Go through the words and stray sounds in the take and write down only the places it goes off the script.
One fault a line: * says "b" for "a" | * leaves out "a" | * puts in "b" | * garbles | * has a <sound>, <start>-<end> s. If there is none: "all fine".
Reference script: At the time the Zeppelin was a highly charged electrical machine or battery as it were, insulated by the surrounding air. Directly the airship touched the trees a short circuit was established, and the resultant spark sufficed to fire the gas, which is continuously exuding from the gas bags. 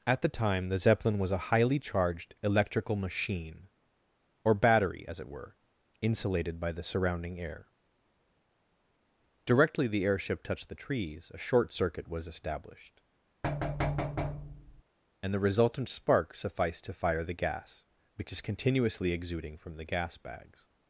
* has a thud, 13.4-14.8 s